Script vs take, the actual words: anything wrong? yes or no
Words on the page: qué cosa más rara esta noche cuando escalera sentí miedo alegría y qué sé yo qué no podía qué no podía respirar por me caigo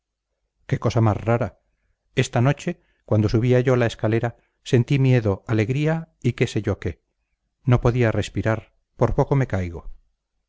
yes